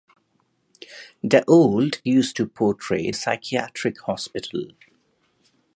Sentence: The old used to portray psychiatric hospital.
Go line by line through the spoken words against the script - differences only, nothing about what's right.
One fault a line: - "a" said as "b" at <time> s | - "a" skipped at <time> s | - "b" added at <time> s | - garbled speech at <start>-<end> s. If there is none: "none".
none